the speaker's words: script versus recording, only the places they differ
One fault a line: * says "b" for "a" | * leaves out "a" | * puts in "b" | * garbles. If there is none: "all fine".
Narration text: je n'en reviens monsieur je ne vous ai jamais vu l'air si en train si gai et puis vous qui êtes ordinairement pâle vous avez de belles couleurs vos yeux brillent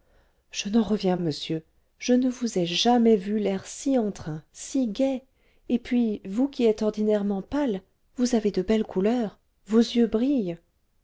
all fine